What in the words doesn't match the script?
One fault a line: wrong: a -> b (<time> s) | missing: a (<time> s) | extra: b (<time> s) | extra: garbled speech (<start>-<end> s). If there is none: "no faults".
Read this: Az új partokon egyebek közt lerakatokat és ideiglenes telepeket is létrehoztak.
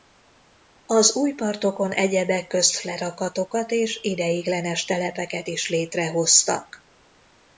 no faults